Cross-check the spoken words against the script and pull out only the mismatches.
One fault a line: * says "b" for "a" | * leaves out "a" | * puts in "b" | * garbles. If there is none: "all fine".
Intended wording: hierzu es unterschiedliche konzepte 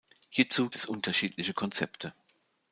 all fine